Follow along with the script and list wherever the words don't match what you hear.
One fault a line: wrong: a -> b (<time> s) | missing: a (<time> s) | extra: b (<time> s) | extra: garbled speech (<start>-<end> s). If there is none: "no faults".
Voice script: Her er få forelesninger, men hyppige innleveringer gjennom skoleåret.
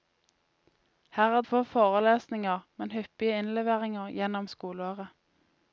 no faults